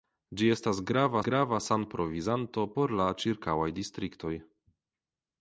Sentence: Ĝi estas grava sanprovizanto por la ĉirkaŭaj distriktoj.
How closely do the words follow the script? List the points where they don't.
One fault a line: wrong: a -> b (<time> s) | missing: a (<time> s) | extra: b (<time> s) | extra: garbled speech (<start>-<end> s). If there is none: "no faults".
extra: grava (1.3 s)